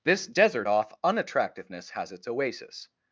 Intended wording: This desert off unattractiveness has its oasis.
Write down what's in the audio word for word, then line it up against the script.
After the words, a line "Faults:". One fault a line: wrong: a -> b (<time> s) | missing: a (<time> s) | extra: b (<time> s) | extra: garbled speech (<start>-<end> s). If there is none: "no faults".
This desert off unattractiveness has its oasis.
Faults:
no faults